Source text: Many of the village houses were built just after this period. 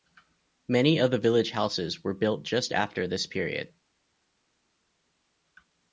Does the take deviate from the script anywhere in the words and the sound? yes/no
no